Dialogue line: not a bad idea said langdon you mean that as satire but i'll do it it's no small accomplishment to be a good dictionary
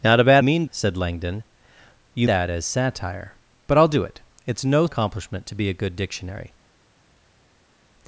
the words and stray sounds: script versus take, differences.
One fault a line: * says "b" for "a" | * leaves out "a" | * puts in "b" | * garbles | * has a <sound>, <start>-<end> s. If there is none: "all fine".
* says "mean" for "idea"
* leaves out "mean"
* leaves out "small"